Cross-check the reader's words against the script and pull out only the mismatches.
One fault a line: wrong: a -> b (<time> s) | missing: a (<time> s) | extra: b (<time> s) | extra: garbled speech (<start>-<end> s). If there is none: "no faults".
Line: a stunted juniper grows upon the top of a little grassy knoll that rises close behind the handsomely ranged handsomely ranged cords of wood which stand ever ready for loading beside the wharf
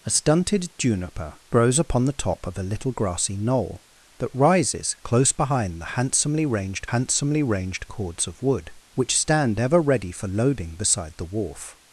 no faults